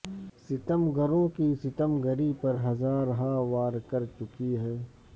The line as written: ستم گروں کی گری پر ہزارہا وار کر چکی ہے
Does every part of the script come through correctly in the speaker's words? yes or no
no